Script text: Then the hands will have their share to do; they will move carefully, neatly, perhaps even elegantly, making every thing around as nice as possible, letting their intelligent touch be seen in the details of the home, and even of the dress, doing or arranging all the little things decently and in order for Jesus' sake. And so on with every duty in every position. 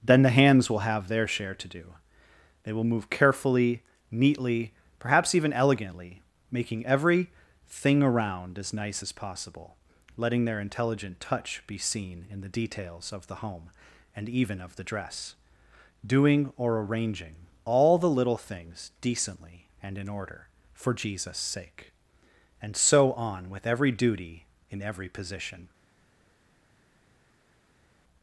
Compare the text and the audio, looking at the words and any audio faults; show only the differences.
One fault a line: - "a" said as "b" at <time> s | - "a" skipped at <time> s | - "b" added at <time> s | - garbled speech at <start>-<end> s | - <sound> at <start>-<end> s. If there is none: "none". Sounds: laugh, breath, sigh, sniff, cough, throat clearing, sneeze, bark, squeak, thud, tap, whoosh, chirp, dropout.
none